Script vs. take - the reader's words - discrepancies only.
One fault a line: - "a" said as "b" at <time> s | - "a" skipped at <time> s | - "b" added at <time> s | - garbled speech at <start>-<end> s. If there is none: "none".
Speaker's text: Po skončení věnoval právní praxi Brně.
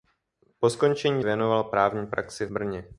none